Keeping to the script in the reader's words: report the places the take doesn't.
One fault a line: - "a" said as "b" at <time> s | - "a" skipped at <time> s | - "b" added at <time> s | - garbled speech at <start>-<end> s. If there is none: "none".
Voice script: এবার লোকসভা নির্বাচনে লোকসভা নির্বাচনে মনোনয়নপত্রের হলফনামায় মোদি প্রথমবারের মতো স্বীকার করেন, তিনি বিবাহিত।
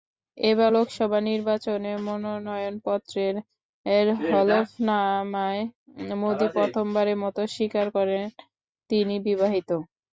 - "লোকসভা নির্বাচনে" skipped at 1.9 s